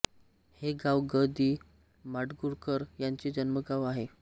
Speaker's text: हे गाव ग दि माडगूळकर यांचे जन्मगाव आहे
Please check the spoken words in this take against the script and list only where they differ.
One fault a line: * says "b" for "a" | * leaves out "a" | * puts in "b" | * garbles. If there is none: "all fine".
all fine